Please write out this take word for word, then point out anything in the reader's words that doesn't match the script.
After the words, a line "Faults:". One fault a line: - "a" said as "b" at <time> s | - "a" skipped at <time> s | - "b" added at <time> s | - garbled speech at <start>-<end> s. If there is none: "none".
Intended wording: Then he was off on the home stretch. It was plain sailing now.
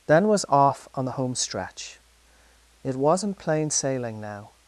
Then was off on the home stretch. It wasn't plain sailing now.
Faults:
- "he" skipped at 0.3 s
- "was" said as "wasn't" at 3.0 s